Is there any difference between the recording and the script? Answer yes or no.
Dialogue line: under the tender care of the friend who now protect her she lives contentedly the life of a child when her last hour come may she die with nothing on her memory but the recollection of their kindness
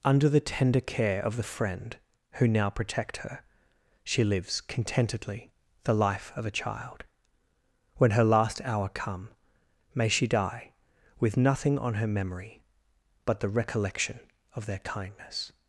no